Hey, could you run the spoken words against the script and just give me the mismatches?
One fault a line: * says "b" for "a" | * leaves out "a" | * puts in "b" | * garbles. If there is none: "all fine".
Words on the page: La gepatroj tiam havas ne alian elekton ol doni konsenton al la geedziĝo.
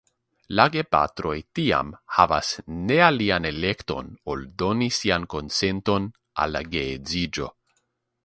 * puts in "sian"